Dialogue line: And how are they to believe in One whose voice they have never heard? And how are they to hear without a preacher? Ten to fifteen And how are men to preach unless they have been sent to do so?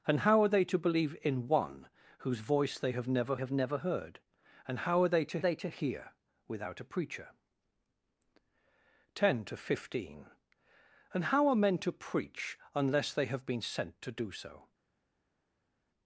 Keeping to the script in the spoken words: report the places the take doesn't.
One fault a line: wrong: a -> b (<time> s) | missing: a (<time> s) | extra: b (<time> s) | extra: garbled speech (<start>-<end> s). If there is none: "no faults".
extra: have never (3.4 s)
extra: they to (5.4 s)